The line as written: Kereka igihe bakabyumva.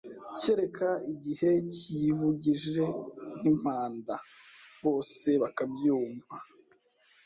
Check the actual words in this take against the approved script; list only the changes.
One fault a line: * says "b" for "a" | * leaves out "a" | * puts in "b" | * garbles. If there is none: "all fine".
* puts in "kiyivugije nk'impanda Bose"